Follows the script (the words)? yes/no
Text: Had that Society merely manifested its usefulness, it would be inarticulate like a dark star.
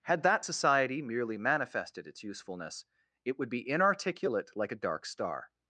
yes